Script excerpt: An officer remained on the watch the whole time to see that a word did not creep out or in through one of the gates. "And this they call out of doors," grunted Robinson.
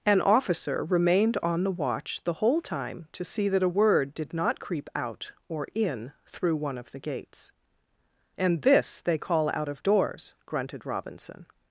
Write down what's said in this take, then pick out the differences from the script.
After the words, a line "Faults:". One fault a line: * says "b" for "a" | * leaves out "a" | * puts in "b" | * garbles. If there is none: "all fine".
An officer remained on the watch the whole time to see that a word did not creep out or in through one of the gates. "And this they call out of doors," grunted Robinson.
Faults:
all fine